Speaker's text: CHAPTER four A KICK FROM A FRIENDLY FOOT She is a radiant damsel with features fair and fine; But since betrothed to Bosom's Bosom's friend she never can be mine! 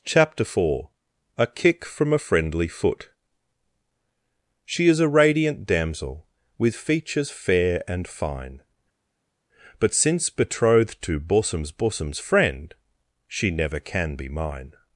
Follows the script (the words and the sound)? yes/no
yes